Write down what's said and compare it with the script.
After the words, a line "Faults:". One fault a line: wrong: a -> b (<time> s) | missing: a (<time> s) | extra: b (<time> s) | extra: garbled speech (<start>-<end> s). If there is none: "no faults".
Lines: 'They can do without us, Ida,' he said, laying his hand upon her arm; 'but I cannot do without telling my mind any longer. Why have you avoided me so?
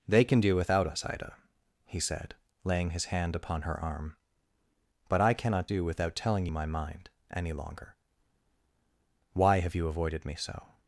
'They can do without us, Ida,' he said, laying his hand upon her arm; 'but I cannot do without telling my mind any longer. Why have you avoided me so?
Faults:
no faults